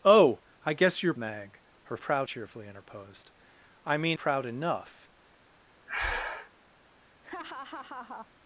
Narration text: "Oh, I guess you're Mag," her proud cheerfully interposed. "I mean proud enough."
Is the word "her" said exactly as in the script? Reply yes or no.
yes